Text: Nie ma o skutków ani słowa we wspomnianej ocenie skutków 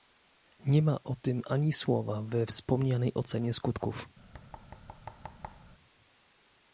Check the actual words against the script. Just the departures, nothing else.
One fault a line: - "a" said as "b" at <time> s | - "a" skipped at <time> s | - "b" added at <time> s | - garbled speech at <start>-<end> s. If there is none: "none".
- "skutków" said as "tym" at 1.2 s